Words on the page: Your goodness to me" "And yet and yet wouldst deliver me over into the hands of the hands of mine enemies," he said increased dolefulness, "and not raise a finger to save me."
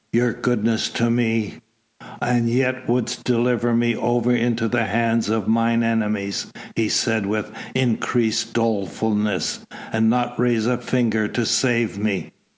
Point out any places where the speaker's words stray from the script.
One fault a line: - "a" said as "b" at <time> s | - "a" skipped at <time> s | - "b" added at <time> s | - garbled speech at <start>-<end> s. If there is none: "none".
- "and yet" skipped at 2.9 s
- "the hands of" skipped at 5.5 s
- "with" added at 7.3 s